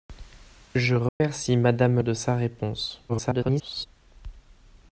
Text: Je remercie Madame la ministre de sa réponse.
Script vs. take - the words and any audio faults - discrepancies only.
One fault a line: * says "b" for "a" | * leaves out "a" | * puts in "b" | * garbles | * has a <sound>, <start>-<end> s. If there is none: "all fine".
* has a dropout, 1.1-1.2 s
* leaves out "la ministre"
* garbles